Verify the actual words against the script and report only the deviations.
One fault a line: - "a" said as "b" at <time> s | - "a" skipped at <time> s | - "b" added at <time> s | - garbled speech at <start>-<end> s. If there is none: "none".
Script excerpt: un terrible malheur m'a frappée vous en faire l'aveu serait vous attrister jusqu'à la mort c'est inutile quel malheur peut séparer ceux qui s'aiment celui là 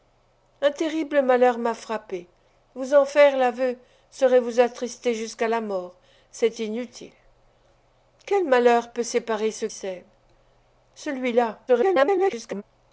- "qui" skipped at 9.7 s
- garbled speech at 11.7-12.6 s